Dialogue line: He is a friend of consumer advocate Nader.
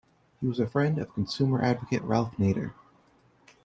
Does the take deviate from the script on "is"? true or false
true